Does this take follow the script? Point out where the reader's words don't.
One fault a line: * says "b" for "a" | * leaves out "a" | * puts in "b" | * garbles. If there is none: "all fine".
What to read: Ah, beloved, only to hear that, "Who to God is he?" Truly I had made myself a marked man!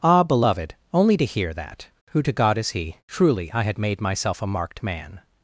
all fine